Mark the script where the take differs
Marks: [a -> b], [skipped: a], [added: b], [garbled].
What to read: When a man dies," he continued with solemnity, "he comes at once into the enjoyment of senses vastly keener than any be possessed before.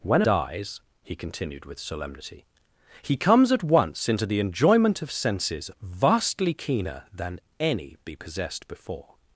When a [skipped: man] dies," he continued with solemnity, "he comes at once into the enjoyment of senses vastly keener than any be possessed before.